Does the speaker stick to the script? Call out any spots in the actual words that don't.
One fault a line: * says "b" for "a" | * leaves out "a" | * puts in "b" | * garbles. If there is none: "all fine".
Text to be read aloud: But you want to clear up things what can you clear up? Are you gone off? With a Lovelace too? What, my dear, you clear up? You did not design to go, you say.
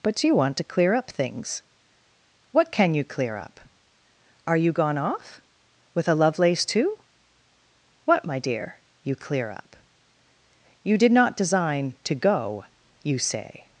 all fine